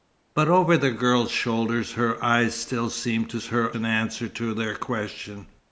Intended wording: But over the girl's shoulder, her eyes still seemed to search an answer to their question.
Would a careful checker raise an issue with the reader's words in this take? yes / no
yes